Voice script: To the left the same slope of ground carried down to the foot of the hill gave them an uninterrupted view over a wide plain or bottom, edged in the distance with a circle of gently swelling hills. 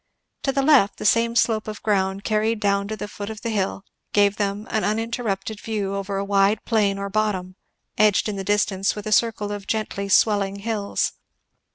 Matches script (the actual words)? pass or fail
pass